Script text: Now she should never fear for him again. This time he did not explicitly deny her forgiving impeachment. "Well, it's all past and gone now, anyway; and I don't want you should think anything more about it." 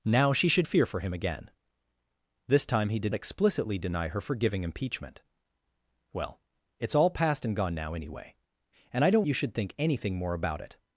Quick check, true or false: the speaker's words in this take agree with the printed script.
false